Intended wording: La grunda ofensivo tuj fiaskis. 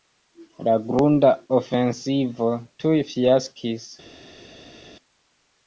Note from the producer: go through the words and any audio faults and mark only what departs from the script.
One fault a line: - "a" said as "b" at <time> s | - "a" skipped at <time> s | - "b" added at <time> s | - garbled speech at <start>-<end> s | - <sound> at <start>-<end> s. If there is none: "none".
none